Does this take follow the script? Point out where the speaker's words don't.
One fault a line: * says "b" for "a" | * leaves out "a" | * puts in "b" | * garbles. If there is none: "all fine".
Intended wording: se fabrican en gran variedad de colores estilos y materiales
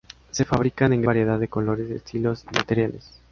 * leaves out "gran"